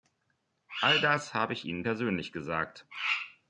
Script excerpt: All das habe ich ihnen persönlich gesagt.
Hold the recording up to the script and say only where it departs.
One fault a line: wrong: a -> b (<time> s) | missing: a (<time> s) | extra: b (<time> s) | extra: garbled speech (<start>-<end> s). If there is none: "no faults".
no faults